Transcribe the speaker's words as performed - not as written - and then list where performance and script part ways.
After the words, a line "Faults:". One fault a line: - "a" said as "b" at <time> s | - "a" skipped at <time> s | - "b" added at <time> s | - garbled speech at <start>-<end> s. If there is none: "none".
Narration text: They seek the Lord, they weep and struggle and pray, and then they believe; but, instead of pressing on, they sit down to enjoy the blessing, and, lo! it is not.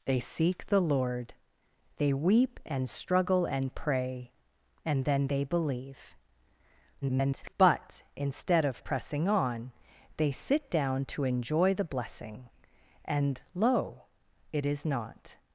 They seek the Lord, they weep and struggle and pray, and then they believe; [garbled] but, instead of pressing on, they sit down to enjoy the blessing, and, lo! it is not.
Faults:
- garbled speech at 7.0-7.5 s